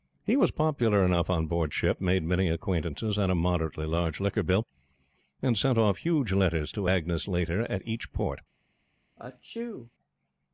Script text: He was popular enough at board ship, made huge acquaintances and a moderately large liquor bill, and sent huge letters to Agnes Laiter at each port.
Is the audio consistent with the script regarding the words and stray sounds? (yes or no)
no